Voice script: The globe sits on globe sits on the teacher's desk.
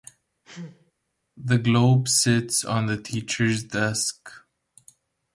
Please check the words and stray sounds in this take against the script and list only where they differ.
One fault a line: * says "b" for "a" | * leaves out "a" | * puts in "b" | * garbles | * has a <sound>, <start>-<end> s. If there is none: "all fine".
* has a sneeze, 0.4-0.9 s
* leaves out "globe sits on"